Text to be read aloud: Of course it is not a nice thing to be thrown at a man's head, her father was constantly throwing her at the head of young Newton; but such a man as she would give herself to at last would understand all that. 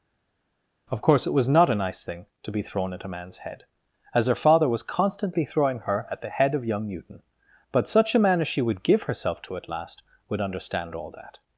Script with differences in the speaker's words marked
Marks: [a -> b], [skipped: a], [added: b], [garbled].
Of course it [is -> was] not a nice thing to be thrown at a man's head, [added: as] her father was constantly throwing her at the head of young Newton; but such a man as she would give herself to at last would understand all that.